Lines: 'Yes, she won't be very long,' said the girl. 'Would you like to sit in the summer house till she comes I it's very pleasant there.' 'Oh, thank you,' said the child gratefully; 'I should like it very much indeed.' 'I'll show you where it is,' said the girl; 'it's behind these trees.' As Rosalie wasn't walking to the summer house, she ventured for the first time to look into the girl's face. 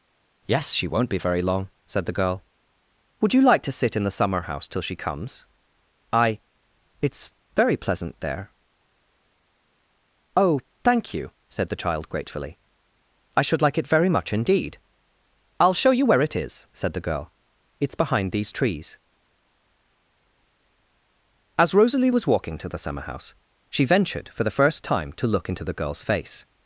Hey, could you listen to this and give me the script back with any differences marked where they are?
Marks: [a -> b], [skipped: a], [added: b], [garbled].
'Yes, she won't be very long,' said the girl. 'Would you like to sit in the summer house till she comes I it's very pleasant there.' 'Oh, thank you,' said the child gratefully; 'I should like it very much indeed.' 'I'll show you where it is,' said the girl; 'it's behind these trees.' As Rosalie [wasn't -> was] walking to the summer house, she ventured for the first time to look into the girl's face.